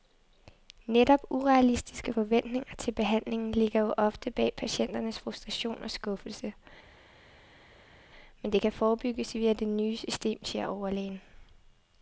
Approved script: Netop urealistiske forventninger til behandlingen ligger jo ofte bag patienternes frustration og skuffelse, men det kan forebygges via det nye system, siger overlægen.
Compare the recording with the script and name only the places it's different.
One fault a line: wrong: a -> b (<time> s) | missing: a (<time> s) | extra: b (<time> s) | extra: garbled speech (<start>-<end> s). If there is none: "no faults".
no faults